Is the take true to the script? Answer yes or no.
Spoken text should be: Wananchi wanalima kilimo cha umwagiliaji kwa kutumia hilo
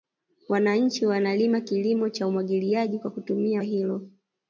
yes